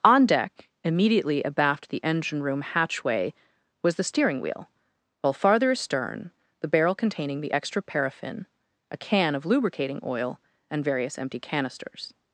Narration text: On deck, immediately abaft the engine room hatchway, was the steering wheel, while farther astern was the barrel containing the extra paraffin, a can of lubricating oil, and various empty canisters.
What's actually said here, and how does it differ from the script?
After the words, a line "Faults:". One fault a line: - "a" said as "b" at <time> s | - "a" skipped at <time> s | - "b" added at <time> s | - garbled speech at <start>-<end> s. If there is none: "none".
On deck, immediately abaft the engine room hatchway, was the steering wheel, while farther astern the barrel containing the extra paraffin, a can of lubricating oil, and various empty canisters.
Faults:
- "was" skipped at 6.3 s